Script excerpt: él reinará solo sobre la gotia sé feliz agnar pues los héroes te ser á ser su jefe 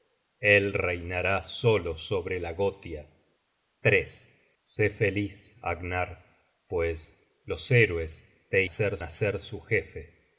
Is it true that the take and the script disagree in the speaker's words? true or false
false